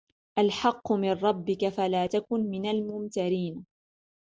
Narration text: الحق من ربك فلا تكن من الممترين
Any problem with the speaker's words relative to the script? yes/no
no